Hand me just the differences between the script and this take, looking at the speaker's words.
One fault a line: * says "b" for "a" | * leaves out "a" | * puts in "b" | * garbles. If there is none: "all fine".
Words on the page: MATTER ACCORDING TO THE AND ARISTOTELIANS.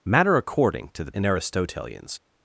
all fine